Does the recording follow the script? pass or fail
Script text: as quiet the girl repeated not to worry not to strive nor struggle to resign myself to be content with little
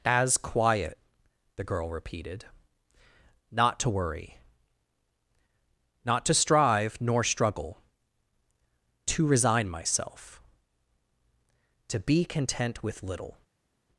pass